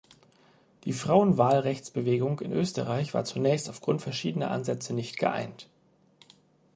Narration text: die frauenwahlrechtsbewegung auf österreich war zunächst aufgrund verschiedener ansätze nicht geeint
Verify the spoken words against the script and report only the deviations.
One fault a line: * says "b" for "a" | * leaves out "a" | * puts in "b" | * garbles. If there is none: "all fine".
* says "in" for "auf"